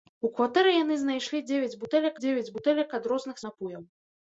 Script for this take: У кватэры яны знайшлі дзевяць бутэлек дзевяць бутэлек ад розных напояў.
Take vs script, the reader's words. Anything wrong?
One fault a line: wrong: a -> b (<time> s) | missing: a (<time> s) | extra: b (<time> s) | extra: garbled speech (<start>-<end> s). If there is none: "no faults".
no faults